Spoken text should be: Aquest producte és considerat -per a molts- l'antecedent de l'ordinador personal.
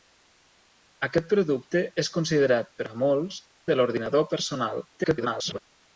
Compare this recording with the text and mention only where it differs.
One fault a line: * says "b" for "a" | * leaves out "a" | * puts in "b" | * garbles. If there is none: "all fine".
* leaves out "l'antecedent"
* garbles